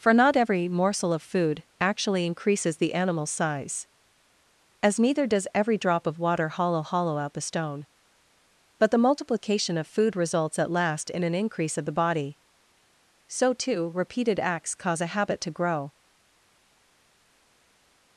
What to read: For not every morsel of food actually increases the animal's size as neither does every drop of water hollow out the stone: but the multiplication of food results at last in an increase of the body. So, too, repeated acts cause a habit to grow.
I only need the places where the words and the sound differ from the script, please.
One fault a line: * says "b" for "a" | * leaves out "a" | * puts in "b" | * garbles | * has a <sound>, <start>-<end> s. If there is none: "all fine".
* puts in "hollow"